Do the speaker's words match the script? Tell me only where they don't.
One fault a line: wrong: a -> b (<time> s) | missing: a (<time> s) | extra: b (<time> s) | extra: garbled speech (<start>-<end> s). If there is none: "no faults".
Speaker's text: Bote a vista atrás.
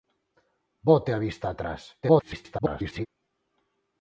extra: garbled speech (2.0-3.1 s)